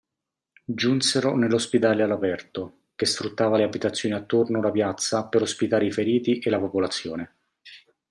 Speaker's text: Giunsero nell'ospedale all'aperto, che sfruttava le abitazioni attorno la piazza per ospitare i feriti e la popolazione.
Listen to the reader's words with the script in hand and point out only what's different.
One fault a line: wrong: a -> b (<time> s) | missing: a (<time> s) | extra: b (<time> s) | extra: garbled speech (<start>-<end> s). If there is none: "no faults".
no faults